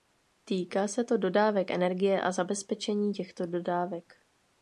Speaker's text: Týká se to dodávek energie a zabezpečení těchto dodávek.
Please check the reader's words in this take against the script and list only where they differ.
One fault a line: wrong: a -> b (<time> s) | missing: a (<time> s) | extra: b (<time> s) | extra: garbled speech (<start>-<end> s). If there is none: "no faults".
no faults